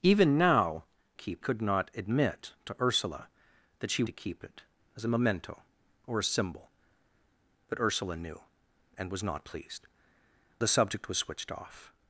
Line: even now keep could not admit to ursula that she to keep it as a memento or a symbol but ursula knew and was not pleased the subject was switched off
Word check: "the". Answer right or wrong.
right